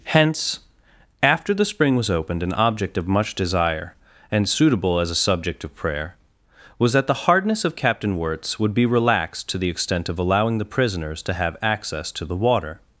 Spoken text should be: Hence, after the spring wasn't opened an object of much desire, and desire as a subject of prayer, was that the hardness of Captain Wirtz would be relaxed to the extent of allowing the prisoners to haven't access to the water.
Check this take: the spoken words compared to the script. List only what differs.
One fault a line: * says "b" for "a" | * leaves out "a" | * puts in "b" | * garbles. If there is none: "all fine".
* says "was" for "wasn't"
* says "suitable" for "desire"
* says "have" for "haven't"